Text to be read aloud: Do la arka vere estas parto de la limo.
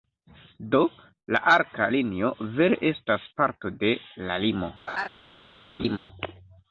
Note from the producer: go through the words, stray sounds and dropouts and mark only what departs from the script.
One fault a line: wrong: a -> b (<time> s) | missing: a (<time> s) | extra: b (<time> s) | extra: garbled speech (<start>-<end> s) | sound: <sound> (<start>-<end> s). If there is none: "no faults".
extra: linio (1.9 s)
sound: laugh (4.9-5.1 s)
sound: laugh (5.8-6.0 s)